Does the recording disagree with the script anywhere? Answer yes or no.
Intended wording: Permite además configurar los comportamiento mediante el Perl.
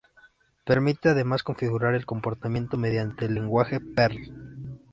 yes